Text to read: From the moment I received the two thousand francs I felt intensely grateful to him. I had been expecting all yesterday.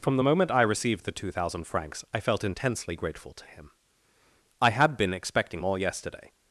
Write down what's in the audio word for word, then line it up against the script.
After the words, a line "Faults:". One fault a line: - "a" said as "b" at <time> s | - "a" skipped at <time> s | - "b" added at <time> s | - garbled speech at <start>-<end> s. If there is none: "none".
From the moment I received the two thousand francs I felt intensely grateful to him. I had been expecting all yesterday.
Faults:
none